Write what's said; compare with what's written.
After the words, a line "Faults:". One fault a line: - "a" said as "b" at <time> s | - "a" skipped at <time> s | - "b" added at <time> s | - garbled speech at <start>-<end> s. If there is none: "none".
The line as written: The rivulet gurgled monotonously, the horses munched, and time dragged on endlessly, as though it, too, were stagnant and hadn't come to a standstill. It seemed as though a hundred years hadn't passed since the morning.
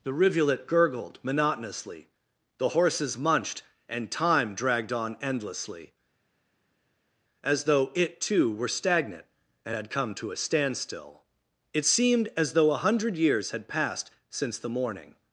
The rivulet gurgled monotonously, the horses munched, and time dragged on endlessly, as though it, too, were stagnant and had come to a standstill. It seemed as though a hundred years had passed since the morning.
Faults:
- "hadn't" said as "had" at 9.7 s
- "hadn't" said as "had" at 13.5 s